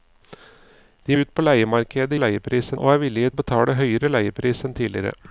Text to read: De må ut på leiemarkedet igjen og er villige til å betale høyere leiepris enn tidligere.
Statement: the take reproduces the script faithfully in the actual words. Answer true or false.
false